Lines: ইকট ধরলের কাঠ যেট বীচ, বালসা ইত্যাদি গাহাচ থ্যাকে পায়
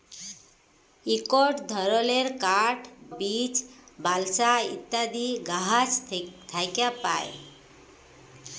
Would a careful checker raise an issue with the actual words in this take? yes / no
yes